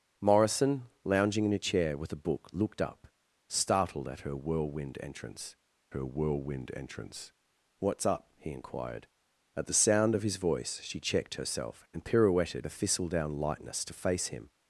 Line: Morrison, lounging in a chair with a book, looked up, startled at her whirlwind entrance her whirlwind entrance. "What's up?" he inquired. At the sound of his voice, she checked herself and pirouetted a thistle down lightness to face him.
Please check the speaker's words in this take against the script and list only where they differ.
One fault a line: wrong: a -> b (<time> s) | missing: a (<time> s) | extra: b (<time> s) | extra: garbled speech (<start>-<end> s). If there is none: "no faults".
no faults